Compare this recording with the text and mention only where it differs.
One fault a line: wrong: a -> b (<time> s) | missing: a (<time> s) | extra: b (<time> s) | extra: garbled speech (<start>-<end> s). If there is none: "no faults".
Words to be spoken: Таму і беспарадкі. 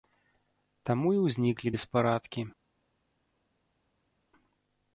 extra: ўзніклі (1.2 s)